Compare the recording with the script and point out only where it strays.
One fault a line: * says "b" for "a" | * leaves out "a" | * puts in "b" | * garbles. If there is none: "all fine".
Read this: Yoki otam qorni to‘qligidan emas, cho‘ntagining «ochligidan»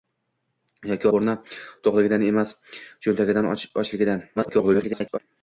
* leaves out "otam"
* garbles